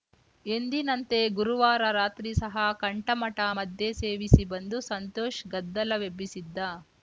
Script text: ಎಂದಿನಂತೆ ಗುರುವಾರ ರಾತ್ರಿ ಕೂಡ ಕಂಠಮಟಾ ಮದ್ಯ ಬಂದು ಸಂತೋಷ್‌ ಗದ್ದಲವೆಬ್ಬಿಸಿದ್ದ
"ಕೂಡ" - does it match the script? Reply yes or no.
no